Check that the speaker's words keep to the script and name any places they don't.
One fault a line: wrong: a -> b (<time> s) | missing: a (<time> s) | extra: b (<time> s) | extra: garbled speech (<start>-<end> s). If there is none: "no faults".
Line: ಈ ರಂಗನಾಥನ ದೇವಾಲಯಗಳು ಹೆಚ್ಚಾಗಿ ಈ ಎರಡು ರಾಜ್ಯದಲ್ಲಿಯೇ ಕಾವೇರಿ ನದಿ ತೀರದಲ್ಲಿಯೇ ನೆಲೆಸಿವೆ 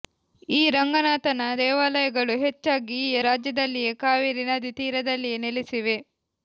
missing: ಎರಡು (3.2 s)